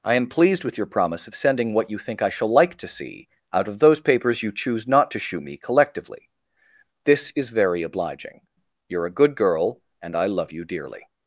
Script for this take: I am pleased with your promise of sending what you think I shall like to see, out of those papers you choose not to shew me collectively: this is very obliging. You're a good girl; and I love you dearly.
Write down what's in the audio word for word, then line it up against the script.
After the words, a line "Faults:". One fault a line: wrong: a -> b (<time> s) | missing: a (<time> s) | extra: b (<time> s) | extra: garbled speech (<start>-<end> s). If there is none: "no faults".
I am pleased with your promise of sending what you think I shall like to see, out of those papers you choose not to shew me collectively: this is very obliging. You're a good girl; and I love you dearly.
Faults:
no faults